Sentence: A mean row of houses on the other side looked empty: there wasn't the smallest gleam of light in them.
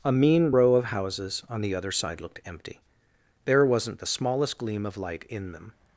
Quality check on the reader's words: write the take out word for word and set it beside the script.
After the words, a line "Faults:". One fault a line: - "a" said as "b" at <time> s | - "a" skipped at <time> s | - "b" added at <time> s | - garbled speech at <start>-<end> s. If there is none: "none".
A mean row of houses on the other side looked empty: there wasn't the smallest gleam of light in them.
Faults:
none